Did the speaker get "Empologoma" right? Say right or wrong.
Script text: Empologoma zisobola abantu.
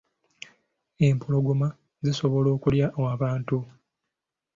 right